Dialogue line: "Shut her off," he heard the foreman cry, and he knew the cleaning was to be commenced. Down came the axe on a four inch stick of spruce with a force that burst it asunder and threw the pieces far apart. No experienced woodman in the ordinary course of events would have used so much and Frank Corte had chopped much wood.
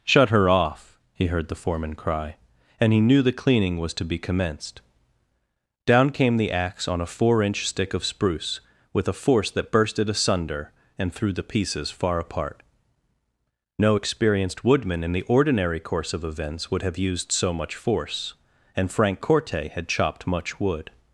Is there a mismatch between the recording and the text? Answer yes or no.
yes